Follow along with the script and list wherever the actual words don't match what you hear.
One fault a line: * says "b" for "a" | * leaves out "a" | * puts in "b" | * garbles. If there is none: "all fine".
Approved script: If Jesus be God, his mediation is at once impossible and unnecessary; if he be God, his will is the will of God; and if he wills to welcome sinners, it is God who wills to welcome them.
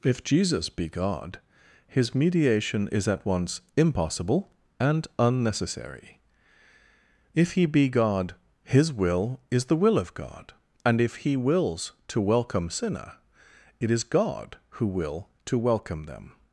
* says "sinner" for "sinners"
* says "will" for "wills"